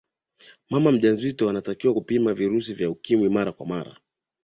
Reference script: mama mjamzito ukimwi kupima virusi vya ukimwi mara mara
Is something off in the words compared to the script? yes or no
yes